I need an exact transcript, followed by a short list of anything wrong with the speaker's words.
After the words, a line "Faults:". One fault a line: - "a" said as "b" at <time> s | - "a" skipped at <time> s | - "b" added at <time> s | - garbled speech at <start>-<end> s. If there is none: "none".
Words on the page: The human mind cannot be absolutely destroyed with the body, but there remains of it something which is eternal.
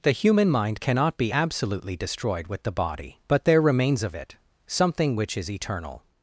The human mind cannot be absolutely destroyed with the body, but there remains of it something which is eternal.
Faults:
none